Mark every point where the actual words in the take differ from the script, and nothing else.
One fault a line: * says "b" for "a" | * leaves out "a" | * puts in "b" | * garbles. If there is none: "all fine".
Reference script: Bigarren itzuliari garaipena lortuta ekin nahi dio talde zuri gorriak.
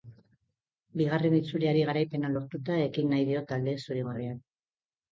all fine